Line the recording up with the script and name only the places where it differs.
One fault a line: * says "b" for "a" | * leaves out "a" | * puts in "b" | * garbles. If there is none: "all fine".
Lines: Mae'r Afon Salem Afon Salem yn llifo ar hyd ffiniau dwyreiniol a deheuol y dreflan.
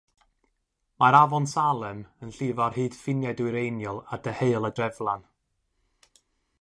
* leaves out "Afon Salem"